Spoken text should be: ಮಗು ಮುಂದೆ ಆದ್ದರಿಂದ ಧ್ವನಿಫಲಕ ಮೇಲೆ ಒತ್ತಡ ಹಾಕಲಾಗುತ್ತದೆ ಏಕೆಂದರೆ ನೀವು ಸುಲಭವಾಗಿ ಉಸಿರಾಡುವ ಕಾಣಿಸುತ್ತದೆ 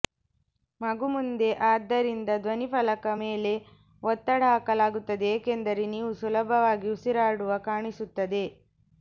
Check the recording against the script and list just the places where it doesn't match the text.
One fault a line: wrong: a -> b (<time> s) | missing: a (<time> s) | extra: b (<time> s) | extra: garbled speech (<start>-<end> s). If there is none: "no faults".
no faults